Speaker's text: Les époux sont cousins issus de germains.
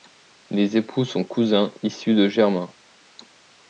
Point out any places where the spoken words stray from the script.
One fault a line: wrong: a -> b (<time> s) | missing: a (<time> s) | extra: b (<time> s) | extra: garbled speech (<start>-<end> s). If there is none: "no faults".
no faults